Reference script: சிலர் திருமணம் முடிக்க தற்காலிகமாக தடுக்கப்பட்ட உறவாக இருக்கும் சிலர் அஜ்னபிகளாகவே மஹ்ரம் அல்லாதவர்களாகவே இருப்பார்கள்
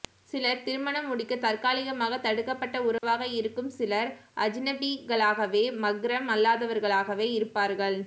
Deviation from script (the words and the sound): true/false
true